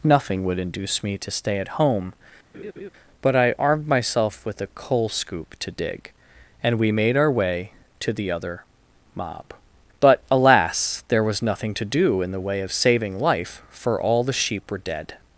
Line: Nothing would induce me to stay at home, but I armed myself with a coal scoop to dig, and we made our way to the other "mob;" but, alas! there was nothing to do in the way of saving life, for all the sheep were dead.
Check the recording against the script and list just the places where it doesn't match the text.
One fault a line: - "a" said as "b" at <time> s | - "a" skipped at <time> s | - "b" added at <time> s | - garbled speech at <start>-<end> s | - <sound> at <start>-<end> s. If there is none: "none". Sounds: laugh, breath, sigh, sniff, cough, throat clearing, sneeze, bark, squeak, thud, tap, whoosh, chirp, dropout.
- laugh at 2.5-2.9 s